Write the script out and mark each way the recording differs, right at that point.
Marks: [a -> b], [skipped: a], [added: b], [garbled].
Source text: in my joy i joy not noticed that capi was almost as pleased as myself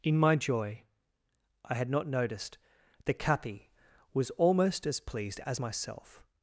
in my joy i [joy -> had] not noticed that capi was almost as pleased as myself